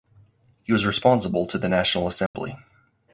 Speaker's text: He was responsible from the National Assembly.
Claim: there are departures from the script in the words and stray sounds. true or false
true